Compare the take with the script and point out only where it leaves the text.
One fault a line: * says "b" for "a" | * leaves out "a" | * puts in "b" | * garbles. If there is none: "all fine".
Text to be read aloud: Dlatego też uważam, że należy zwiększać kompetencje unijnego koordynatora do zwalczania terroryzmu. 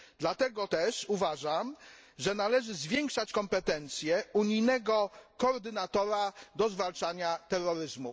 all fine